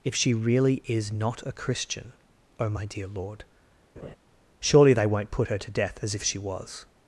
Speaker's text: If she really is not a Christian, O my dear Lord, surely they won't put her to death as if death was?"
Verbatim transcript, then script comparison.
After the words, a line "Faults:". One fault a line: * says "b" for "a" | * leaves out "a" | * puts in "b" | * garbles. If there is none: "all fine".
If she really is not a Christian, O my dear Lord, surely they won't put her to death as if she was?"
Faults:
* says "she" for "death"